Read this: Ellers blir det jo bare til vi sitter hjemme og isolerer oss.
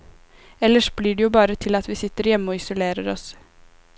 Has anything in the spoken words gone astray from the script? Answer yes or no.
yes